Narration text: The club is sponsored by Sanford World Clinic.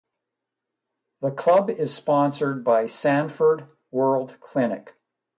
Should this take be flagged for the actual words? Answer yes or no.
no